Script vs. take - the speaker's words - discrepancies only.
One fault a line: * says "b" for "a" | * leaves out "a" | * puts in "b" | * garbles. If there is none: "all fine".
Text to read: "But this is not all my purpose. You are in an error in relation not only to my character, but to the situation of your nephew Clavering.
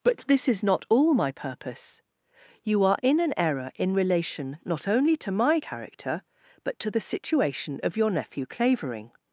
all fine